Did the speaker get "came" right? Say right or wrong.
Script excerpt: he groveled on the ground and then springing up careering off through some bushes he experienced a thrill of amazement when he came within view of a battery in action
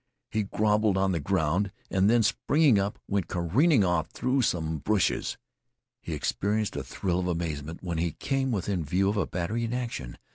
right